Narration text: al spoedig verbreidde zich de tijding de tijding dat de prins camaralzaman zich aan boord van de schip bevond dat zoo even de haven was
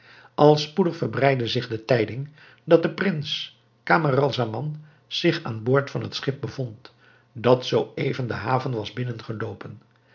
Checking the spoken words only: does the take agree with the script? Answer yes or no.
no